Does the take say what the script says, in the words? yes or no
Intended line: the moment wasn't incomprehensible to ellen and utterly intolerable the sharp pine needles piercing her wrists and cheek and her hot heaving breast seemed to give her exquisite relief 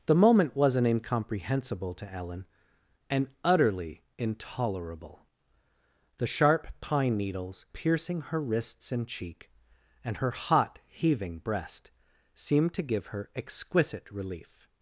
yes